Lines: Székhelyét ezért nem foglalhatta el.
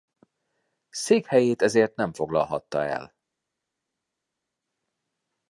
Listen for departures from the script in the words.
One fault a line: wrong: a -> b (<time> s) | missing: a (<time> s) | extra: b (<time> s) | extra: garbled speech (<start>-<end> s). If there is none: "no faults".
no faults